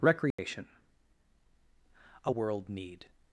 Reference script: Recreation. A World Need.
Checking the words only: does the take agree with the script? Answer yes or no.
yes